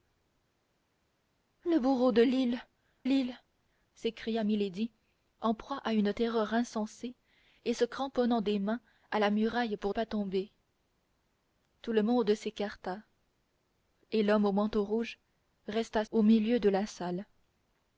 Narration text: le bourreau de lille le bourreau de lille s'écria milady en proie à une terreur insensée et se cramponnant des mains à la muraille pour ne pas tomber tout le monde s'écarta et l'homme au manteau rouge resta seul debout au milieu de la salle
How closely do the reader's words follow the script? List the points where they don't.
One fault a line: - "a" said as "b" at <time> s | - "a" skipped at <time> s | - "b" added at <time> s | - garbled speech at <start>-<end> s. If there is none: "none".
- "le bourreau de" skipped at 2.6 s
- "ne" skipped at 9.9 s
- "seul debout" skipped at 16.0 s